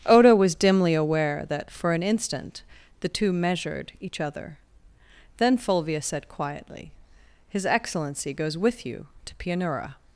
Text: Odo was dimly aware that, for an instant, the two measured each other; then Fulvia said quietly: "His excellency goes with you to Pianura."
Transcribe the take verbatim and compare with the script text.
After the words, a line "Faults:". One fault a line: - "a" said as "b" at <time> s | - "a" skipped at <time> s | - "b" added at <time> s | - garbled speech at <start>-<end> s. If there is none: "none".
Odo was dimly aware that, for an instant, the two measured each other; then Fulvia said quietly: "His excellency goes with you to Pianura."
Faults:
none